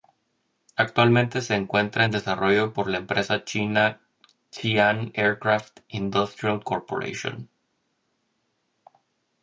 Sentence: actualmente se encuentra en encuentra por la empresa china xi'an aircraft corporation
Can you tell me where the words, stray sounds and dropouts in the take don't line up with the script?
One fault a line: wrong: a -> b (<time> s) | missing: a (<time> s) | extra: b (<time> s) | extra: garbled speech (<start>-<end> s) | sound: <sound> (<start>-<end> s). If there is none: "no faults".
wrong: encuentra -> desarrollo (2.1 s)
extra: industrial (5.9 s)